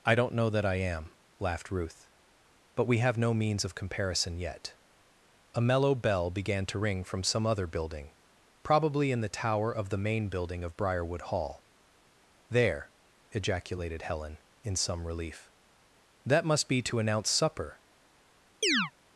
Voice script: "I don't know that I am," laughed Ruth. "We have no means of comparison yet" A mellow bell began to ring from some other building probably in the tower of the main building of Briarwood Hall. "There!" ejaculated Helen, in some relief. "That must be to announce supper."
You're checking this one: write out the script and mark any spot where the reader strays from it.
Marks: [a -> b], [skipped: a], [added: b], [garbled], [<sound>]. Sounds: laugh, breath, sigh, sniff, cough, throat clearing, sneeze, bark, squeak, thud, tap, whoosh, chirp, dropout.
"I don't know that I am," laughed Ruth. [added: But] "We have no means of comparison yet" A mellow bell began to ring from some other building probably in the tower of the main building of Briarwood Hall. "There!" ejaculated Helen, in some relief. "That must be to announce supper." [chirp]